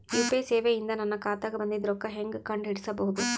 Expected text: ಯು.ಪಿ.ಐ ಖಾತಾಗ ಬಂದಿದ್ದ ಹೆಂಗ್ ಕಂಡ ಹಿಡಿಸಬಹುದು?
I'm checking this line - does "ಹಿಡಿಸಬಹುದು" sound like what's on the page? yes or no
yes